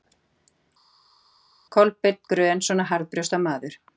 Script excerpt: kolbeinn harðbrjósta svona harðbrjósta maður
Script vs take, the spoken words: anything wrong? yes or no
yes